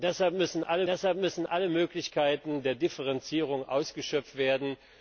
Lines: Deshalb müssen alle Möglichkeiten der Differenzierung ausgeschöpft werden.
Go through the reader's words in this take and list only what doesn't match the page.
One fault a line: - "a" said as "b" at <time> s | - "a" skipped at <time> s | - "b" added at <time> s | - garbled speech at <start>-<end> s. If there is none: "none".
- "deshalb müssen alle" added at 0.9 s